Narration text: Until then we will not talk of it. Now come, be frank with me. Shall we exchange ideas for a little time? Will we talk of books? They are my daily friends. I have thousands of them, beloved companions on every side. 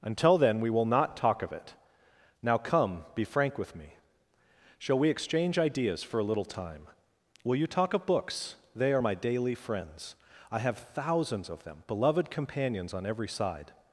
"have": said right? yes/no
yes